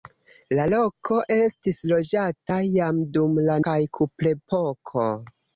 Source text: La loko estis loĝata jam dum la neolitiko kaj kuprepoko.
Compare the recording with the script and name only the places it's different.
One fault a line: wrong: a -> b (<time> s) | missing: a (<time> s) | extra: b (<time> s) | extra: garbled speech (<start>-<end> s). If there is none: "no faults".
missing: neolitiko (3.6 s)